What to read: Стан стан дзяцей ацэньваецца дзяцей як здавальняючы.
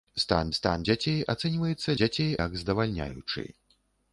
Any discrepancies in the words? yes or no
no